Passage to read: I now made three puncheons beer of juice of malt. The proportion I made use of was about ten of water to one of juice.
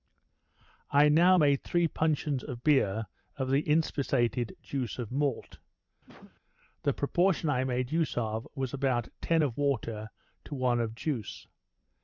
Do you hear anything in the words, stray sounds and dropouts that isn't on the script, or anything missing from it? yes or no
yes